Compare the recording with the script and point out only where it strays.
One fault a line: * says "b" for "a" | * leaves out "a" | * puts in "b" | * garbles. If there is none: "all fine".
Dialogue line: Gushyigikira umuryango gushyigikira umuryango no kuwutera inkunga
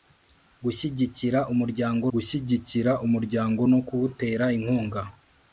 all fine